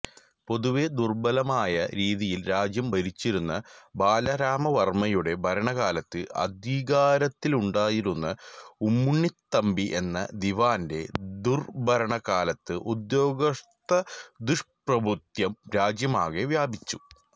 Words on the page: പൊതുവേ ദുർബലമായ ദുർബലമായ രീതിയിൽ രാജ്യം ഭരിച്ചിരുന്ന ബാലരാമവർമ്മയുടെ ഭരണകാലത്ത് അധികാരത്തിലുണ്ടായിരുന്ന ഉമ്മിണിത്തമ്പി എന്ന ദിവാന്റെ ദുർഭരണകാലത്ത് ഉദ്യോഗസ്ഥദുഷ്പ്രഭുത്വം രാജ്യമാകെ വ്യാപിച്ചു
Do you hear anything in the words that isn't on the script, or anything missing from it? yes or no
yes